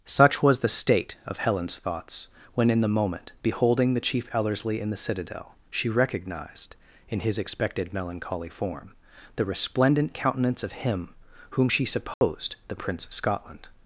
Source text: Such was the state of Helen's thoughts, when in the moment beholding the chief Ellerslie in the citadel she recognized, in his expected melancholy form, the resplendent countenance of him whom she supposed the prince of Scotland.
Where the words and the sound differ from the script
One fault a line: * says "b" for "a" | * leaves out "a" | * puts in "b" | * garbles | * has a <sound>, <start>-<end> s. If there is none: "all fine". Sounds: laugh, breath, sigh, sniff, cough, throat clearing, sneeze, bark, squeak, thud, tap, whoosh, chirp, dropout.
* has a dropout, 12.1-12.2 s